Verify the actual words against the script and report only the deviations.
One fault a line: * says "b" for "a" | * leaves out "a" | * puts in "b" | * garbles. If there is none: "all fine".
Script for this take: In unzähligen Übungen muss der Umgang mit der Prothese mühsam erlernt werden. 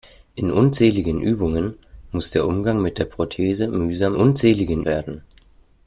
* says "unzähligen" for "erlernt"